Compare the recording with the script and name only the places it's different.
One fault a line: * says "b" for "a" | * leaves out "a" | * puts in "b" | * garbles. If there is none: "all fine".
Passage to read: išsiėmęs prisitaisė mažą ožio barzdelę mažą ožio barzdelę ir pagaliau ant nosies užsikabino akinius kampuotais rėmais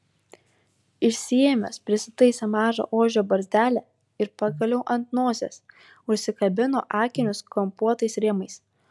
* leaves out "mažą ožio barzdelę"